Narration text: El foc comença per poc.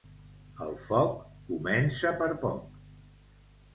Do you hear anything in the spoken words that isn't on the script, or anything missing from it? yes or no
no